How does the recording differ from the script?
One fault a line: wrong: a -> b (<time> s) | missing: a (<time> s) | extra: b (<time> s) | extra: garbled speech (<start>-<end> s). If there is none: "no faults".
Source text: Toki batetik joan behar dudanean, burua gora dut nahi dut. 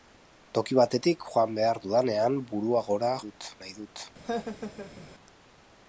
no faults